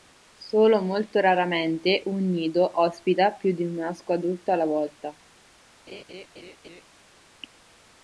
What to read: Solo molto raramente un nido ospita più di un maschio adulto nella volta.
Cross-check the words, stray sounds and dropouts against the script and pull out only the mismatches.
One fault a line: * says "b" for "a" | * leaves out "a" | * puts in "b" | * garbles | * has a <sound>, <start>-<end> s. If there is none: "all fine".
* says "alla" for "nella"
* has a laugh, 5.9-6.8 s